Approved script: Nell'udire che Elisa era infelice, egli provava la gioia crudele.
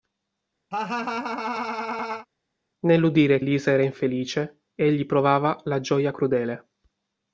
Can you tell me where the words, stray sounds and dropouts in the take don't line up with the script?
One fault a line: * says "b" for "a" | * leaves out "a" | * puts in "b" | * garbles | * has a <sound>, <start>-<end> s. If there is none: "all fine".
* has a laugh, 0.7-2.3 s
* leaves out "che"